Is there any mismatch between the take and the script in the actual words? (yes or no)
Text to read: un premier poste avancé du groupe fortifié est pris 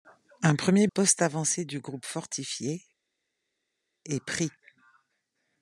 no